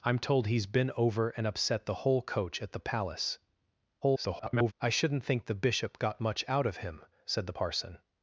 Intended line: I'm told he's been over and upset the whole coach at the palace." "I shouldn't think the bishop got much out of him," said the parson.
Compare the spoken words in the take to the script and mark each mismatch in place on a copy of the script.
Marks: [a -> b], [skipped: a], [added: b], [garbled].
I'm told he's been over and upset the whole coach at the palace." [garbled] "I shouldn't think the bishop got much out of him," said the parson.